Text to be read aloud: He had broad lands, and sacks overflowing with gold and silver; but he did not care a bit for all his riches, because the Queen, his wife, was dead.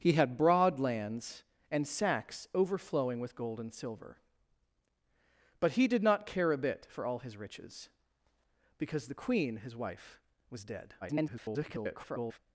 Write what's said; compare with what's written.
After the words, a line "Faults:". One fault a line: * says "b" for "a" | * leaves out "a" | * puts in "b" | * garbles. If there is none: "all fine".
He had broad lands, and sacks overflowing with gold and silver; but he did not care a bit for all his riches, because the Queen, his wife, was dead. [garbled]
Faults:
* garbles